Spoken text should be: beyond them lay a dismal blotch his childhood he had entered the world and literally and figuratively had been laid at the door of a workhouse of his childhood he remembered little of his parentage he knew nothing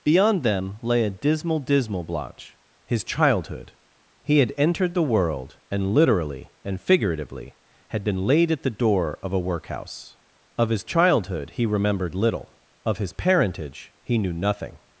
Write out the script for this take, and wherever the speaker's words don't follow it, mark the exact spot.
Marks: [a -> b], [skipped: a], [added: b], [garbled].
beyond them lay a dismal [added: dismal] blotch his childhood he had entered the world and literally and figuratively had been laid at the door of a workhouse of his childhood he remembered little of his parentage he knew nothing